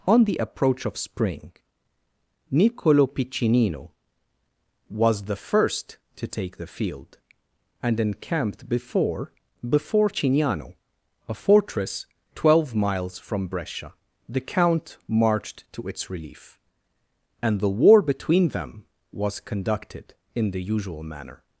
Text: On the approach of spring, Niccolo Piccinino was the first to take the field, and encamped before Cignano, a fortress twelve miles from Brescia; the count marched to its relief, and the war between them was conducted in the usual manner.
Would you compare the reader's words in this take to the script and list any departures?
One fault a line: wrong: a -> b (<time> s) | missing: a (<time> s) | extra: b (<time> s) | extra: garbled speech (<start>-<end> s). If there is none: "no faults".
extra: before (9.7 s)